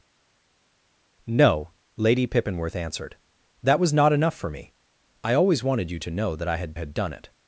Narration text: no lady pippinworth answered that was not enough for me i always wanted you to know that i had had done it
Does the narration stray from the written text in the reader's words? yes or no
no